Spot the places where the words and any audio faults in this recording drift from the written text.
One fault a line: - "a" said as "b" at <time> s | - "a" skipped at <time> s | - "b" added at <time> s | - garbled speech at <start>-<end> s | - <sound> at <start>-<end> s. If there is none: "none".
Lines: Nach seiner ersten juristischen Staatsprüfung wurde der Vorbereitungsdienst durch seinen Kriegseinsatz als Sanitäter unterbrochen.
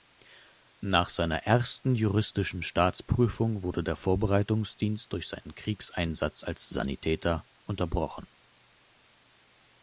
none